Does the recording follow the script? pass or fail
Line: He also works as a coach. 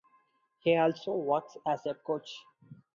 pass